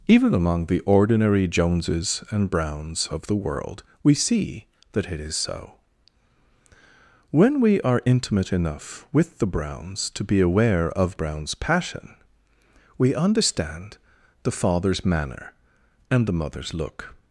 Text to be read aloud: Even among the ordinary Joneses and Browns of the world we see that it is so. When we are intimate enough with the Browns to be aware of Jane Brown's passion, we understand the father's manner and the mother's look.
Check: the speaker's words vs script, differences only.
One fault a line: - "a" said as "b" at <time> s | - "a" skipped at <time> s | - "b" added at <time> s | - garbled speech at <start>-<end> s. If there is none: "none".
- "Jane" skipped at 11.2 s